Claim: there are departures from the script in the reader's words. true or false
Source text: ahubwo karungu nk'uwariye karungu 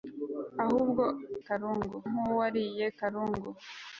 false